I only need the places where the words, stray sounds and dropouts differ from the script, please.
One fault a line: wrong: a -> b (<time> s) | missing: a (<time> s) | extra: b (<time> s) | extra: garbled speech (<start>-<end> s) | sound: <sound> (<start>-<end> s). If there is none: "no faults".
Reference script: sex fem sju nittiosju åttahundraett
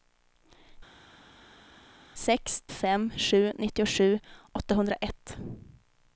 no faults